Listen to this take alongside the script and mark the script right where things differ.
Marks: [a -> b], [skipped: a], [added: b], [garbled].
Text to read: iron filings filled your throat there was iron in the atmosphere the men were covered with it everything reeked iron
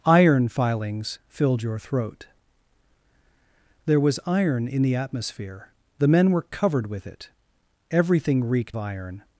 iron filings filled your throat there was iron in the atmosphere the men were covered with it everything reeked iron